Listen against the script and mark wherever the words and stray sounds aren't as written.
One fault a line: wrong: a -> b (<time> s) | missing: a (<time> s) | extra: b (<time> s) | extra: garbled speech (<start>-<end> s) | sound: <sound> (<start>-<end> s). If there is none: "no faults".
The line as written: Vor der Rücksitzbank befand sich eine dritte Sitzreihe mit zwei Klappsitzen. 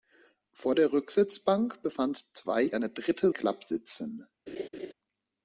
wrong: sich -> zwei (2.2 s)
missing: Sitzreihe mit zwei (3.3 s)
sound: laugh (4.5-4.9 s)